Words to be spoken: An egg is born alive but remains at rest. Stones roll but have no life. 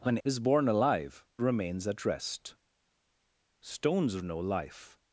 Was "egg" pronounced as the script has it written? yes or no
no